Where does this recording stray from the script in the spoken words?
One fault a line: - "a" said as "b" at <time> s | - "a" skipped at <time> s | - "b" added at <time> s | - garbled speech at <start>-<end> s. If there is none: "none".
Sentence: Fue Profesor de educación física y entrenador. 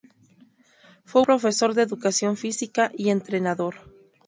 none